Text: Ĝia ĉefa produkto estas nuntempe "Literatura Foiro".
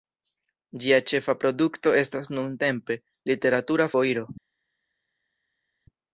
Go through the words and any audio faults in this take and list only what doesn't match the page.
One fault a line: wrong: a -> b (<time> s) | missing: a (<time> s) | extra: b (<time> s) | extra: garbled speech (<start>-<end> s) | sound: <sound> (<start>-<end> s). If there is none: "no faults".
no faults